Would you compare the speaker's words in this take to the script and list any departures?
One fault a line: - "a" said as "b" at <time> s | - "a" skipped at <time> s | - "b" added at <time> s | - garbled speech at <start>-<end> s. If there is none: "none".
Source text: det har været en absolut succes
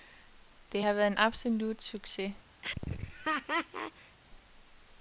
none